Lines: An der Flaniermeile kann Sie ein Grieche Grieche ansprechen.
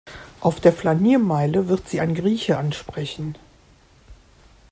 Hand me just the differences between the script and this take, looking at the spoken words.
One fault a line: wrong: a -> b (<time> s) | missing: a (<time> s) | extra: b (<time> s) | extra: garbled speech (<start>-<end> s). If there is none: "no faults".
wrong: An -> Auf (0.4 s)
wrong: kann -> wird (1.7 s)
missing: Grieche (2.6 s)